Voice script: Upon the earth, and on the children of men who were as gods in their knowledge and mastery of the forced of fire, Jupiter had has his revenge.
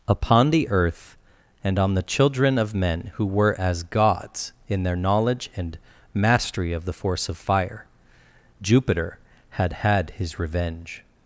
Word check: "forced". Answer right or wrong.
wrong